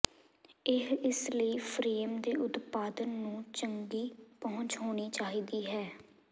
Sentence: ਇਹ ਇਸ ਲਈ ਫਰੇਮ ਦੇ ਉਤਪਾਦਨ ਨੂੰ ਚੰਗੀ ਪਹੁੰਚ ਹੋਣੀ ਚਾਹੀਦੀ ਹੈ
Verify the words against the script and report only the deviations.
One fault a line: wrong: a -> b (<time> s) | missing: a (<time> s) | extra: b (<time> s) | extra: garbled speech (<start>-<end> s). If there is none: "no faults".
no faults